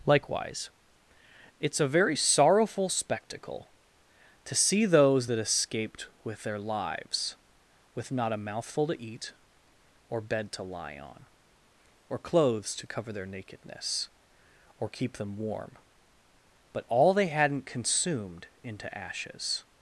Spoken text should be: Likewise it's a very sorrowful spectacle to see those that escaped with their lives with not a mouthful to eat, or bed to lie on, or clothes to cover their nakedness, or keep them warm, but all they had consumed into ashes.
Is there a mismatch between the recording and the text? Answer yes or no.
yes